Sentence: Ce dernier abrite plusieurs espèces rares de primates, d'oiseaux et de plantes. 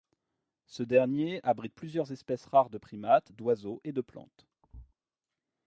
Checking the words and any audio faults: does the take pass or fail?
fail